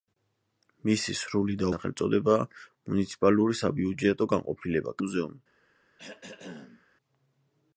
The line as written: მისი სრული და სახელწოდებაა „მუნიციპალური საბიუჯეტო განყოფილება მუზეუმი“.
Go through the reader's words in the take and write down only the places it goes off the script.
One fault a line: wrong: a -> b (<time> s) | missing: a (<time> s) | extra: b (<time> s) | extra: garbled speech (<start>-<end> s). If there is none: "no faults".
no faults